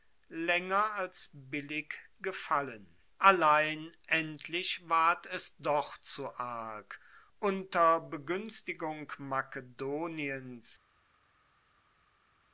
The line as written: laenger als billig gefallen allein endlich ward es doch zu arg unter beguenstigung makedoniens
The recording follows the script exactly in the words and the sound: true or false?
true